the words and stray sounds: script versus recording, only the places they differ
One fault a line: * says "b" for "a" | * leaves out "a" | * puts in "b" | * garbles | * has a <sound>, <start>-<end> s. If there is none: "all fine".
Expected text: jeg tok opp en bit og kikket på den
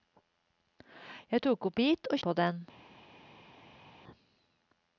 * leaves out "en"
* leaves out "kikket"